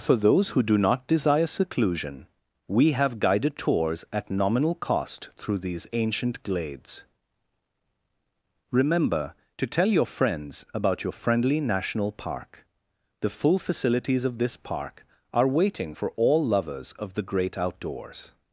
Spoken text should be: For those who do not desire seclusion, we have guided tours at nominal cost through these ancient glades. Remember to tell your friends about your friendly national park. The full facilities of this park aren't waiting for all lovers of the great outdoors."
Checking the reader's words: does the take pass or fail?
fail